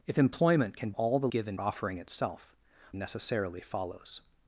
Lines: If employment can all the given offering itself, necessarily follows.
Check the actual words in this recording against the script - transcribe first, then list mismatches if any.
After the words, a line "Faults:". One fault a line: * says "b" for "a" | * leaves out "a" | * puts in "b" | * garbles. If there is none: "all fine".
If employment can all the given offering itself, necessarily follows.
Faults:
all fine